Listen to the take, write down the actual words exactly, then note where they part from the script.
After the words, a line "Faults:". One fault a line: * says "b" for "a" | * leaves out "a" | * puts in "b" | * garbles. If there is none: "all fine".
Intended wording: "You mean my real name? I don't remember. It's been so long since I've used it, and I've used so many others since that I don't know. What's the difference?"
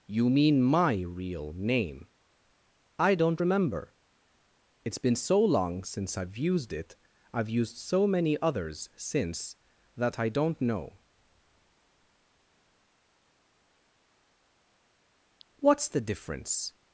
"You mean my real name? I don't remember. It's been so long since I've used it, I've used so many others since that I don't know. What's the difference?"
Faults:
* leaves out "and"